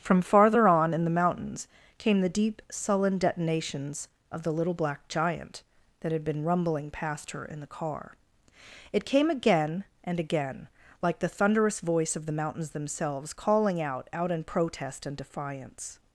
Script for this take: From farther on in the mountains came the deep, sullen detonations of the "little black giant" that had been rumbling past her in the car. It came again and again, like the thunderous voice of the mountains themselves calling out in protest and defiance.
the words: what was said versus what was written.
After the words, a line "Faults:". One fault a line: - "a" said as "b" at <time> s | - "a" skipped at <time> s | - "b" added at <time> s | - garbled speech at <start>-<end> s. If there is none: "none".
From farther on in the mountains came the deep, sullen detonations of the "little black giant" that had been rumbling past her in the car. It came again and again, like the thunderous voice of the mountains themselves calling out out in protest and defiance.
Faults:
- "out" added at 14.1 s